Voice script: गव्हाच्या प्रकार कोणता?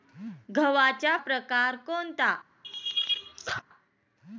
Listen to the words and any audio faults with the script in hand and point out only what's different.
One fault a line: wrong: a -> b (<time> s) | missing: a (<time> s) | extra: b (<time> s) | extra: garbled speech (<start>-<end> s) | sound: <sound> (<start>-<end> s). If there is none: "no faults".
sound: laugh (2.6-3.6 s)